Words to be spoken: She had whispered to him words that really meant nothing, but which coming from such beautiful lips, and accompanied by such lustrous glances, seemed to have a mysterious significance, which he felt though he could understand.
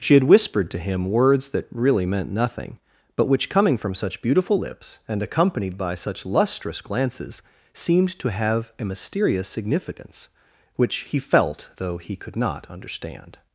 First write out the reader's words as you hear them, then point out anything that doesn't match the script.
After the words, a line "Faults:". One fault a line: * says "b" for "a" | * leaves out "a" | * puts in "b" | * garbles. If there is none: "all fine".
She had whispered to him words that really meant nothing, but which coming from such beautiful lips, and accompanied by such lustrous glances, seemed to have a mysterious significance, which he felt though he could not understand.
Faults:
* puts in "not"